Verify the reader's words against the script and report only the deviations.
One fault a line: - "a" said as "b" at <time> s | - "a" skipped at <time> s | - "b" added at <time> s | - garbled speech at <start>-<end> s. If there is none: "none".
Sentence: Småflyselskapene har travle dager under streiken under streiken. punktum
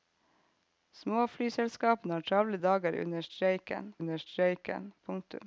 none